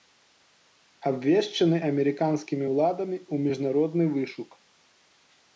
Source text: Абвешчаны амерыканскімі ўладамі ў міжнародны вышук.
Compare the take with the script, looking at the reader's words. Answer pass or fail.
pass